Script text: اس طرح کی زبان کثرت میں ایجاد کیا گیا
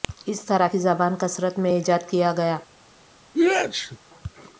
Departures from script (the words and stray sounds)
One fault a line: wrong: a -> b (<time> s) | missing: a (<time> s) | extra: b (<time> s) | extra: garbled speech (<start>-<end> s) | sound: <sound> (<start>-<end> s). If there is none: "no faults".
sound: sneeze (3.3-4.0 s)